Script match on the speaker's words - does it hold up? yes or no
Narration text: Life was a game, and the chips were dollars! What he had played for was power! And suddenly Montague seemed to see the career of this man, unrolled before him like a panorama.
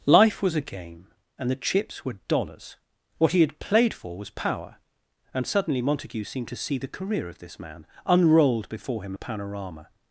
no